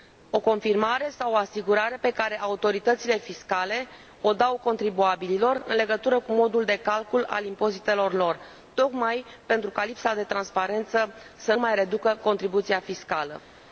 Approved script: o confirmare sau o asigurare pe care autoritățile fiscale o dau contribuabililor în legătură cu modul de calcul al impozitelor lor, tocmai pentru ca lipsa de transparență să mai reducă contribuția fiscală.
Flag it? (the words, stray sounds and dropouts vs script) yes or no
no